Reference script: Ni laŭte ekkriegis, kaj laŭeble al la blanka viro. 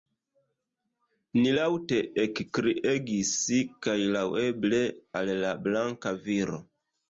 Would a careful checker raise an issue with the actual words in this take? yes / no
no